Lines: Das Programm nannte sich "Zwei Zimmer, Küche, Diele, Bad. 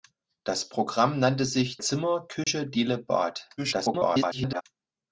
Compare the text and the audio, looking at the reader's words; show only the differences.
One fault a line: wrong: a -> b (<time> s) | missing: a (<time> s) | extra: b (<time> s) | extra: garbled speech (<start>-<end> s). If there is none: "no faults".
missing: Zwei (1.8 s)
extra: garbled speech (3.6-4.6 s)